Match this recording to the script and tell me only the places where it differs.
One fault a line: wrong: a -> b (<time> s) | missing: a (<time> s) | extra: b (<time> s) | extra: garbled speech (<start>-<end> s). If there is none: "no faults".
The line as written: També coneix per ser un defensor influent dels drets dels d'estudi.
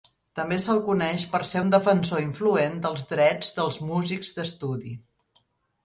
extra: se'l (0.6 s)
extra: músics (3.9 s)